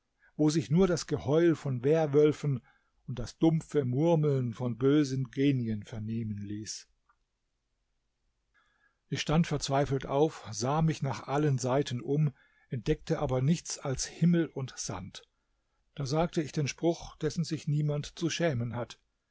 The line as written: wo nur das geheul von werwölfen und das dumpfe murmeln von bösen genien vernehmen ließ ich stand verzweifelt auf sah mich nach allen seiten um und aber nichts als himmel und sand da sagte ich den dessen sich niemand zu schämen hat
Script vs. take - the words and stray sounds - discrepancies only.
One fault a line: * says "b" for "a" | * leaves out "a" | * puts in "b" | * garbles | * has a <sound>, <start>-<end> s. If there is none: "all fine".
* puts in "sich"
* says "entdeckte" for "und"
* puts in "spruch"